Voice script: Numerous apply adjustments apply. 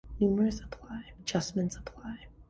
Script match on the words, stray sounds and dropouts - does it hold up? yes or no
yes